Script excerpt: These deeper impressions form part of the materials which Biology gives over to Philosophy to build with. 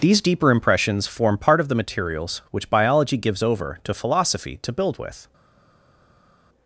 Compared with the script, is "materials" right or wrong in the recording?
right